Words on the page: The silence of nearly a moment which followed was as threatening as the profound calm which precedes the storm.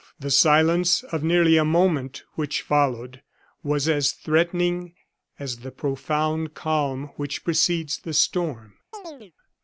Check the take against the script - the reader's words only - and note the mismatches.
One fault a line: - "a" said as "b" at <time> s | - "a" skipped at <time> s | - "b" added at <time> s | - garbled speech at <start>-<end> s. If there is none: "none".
none